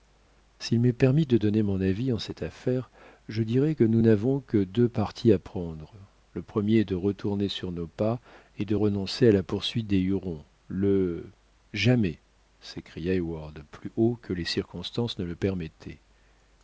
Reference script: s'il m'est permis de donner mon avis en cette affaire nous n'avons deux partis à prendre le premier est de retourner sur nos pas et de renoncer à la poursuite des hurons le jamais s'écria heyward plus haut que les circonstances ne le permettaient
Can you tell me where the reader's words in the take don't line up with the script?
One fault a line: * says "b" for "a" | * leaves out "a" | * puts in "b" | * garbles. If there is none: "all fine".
* puts in "je dirai que"
* puts in "que"